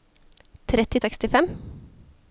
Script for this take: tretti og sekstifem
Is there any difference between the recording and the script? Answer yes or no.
no